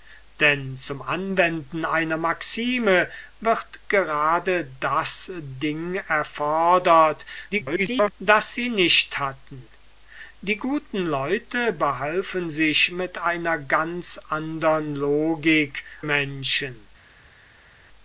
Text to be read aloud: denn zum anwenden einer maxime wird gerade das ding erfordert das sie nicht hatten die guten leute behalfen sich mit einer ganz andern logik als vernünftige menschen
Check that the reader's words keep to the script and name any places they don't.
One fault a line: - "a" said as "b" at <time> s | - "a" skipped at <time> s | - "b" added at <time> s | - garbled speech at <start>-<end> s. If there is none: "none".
- garbled speech at 7.5-8.1 s
- "als vernünftige" skipped at 15.8 s